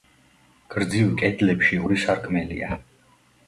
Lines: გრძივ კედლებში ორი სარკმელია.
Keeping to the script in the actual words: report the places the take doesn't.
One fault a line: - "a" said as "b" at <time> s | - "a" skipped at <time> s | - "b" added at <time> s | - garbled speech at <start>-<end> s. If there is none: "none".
none